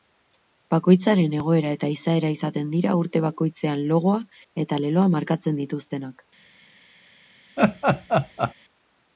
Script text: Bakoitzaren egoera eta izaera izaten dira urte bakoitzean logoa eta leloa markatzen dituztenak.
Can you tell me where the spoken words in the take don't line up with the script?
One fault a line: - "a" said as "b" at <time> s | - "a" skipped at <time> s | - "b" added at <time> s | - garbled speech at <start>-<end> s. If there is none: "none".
none